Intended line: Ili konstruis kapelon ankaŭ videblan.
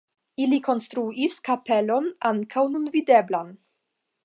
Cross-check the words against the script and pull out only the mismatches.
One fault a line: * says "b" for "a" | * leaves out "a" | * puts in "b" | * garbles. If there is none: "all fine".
* puts in "nun"